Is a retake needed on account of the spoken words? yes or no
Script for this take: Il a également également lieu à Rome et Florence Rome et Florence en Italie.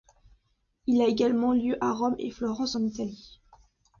yes